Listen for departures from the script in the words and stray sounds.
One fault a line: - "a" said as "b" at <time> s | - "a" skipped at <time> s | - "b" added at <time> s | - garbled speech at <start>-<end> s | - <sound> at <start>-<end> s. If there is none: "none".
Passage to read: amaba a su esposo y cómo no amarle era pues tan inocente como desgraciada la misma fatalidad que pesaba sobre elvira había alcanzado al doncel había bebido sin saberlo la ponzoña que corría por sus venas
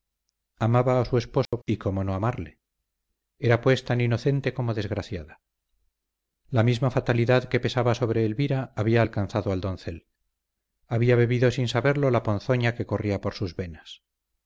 - dropout at 1.5-1.5 s